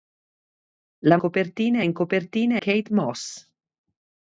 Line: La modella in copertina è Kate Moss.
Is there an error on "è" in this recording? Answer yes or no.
yes